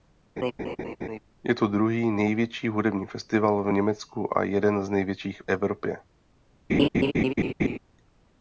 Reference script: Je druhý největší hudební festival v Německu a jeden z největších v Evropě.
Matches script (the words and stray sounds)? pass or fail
fail